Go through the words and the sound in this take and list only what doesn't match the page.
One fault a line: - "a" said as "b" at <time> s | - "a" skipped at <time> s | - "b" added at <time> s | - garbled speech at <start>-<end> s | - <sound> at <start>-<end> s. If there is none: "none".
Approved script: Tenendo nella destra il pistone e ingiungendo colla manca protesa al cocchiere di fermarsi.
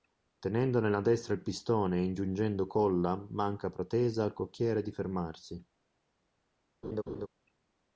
- laugh at 6.8-7.3 s